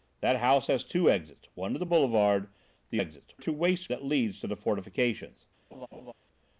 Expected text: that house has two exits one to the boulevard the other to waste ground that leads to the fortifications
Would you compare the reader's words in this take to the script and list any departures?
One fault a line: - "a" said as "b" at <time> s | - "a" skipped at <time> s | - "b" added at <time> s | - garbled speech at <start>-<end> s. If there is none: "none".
- "other" said as "exits" at 3.0 s
- "ground" skipped at 3.9 s